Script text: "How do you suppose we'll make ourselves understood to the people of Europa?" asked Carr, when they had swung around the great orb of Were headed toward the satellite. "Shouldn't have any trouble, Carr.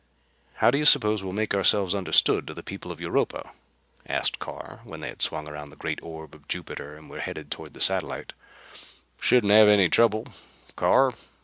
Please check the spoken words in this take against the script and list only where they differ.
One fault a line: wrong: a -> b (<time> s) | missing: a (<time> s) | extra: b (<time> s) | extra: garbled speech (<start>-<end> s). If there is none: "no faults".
extra: Jupiter and (6.5 s)